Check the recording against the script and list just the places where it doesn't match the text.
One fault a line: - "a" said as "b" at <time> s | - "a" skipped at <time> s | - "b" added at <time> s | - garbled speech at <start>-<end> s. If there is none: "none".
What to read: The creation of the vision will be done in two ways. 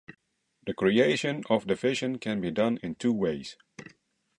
- "will" said as "can" at 2.2 s